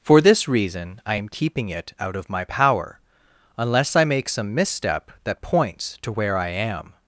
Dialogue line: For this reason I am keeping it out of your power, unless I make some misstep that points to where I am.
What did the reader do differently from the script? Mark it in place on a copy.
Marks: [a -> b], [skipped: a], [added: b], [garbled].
For this reason I am keeping it out of [your -> my] power, unless I make some misstep that points to where I am.